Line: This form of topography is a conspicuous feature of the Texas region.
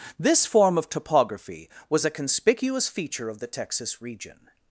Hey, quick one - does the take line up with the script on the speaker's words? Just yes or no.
no